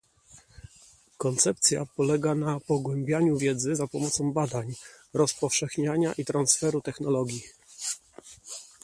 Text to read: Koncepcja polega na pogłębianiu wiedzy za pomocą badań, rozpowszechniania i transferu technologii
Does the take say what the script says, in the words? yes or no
yes